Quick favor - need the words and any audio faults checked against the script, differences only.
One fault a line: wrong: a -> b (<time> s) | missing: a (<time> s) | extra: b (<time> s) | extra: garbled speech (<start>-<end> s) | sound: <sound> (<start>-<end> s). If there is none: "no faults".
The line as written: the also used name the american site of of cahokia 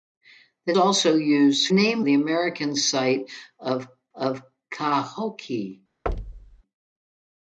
sound: thud (6.1-6.6 s)